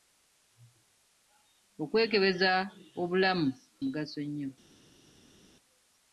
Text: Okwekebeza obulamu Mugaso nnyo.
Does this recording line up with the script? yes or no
yes